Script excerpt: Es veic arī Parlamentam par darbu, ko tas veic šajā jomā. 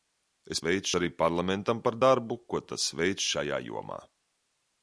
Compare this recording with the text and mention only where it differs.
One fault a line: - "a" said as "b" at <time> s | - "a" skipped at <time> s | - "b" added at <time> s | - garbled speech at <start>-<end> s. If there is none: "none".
none